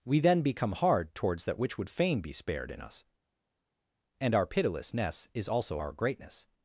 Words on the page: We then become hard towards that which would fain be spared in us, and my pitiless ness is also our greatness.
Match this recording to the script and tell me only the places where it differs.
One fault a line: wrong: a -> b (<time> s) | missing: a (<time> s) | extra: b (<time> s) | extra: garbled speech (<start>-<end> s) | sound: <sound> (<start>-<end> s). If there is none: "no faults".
wrong: my -> our (4.3 s)